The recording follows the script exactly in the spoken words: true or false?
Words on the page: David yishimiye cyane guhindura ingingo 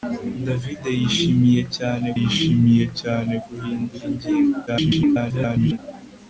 false